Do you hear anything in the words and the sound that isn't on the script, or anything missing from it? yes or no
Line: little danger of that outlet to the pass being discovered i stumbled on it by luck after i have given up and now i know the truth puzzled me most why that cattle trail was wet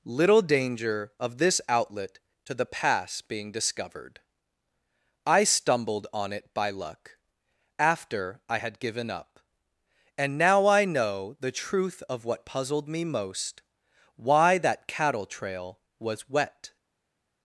yes